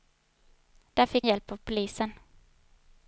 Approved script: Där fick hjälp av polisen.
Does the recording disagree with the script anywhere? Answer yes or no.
no